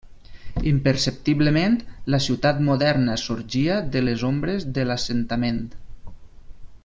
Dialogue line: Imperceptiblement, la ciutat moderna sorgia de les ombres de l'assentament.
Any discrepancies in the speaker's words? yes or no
no